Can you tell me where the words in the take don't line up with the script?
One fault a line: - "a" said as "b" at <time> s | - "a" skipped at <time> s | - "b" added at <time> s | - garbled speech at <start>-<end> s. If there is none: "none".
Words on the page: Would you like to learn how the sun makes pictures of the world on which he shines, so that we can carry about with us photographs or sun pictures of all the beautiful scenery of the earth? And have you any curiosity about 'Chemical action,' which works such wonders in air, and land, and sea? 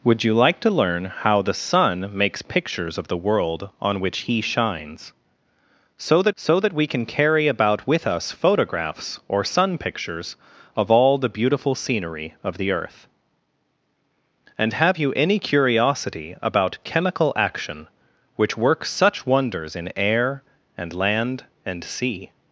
- "so that" added at 6.3 s